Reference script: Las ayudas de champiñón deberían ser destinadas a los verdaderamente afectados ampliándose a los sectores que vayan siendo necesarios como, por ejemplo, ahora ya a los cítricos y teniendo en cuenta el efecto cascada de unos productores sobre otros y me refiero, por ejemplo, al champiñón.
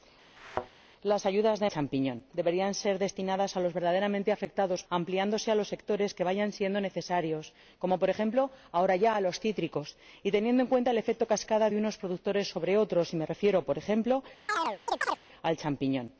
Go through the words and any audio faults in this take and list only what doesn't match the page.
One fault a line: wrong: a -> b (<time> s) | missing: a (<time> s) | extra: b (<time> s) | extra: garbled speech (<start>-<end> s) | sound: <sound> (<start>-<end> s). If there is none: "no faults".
sound: thud (0.4-0.7 s)
sound: chirp (14.5-15.2 s)